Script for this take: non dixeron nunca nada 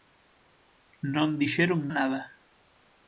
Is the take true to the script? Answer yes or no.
no